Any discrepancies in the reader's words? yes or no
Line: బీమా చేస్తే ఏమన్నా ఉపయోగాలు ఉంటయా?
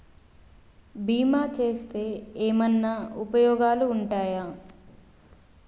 no